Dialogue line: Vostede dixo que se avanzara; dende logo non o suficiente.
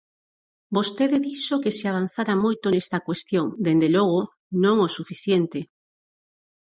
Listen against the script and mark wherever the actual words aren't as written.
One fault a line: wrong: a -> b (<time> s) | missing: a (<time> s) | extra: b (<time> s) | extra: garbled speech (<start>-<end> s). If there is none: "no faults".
extra: moito nesta cuestión (2.4 s)